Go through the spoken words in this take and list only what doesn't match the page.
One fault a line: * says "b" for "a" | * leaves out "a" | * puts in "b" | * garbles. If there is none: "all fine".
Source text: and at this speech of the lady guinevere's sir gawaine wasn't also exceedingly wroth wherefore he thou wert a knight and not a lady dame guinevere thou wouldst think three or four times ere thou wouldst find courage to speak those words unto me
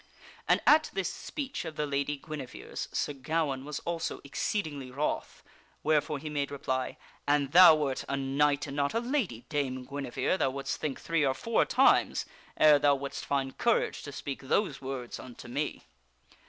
* says "was" for "wasn't"
* puts in "made reply an"